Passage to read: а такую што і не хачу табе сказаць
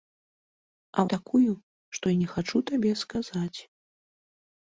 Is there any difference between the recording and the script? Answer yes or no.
no